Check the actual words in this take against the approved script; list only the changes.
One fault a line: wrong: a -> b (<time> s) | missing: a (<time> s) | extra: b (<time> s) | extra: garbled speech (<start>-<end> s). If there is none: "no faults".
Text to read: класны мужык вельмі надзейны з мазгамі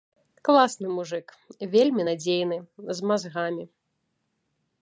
no faults